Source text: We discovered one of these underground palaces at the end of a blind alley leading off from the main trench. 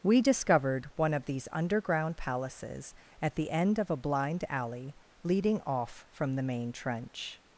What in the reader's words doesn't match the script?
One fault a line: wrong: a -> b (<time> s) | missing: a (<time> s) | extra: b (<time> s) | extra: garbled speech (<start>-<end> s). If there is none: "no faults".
no faults